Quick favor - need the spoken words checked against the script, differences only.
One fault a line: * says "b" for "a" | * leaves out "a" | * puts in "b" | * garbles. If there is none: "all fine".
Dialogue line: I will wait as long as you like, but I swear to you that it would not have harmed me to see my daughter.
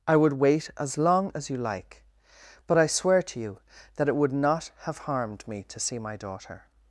* says "would" for "will"